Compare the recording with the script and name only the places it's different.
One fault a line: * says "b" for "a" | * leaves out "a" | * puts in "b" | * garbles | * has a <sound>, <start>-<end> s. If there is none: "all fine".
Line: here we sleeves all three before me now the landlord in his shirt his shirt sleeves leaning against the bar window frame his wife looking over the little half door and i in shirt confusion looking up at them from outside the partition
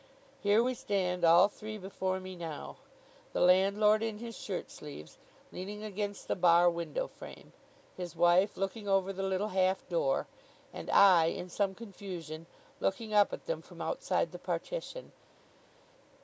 * says "stand" for "sleeves"
* leaves out "his shirt"
* says "some" for "shirt"